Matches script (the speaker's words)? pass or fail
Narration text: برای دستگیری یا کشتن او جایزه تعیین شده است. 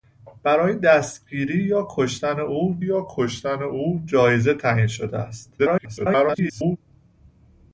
fail